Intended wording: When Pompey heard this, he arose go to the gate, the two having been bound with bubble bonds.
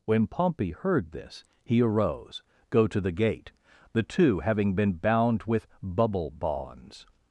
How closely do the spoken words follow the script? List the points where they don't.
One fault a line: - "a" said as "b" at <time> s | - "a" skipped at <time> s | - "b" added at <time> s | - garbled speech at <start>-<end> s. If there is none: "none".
none